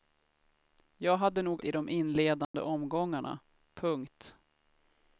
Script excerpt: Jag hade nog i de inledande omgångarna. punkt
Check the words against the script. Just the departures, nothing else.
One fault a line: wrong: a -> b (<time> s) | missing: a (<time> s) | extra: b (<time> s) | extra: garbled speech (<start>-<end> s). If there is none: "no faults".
no faults